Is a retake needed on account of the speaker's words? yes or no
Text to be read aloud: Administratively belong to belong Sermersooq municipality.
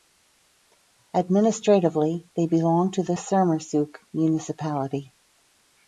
yes